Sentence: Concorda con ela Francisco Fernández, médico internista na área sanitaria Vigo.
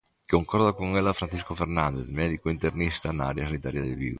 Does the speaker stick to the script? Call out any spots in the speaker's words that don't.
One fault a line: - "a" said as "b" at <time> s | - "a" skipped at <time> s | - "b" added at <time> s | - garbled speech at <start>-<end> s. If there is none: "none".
- "de" added at 3.8 s